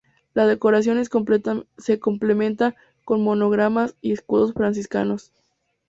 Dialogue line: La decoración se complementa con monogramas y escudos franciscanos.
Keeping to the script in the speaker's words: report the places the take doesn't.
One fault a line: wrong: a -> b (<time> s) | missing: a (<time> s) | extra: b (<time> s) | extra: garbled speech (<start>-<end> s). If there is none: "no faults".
no faults